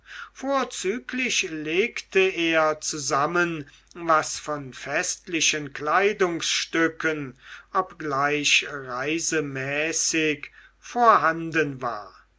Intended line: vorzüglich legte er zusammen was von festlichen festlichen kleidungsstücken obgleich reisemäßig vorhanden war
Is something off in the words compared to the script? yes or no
yes